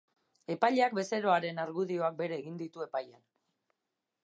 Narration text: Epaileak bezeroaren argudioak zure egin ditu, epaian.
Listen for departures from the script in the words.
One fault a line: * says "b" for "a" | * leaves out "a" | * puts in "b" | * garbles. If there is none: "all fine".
* says "bere" for "zure"